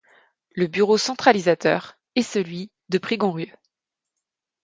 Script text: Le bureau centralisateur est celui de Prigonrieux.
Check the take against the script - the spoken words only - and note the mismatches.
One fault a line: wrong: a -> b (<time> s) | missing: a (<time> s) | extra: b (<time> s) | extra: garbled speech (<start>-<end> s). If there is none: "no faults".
no faults